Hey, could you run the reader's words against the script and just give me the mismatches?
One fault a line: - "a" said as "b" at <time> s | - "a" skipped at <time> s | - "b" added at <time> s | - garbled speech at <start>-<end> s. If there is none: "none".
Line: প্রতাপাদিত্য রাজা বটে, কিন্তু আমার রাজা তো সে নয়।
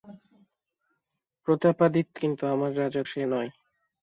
- "রাজা বটে" skipped at 2.1 s
- "তো" skipped at 3.0 s